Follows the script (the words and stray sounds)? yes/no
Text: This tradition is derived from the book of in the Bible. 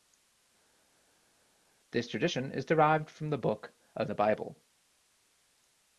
no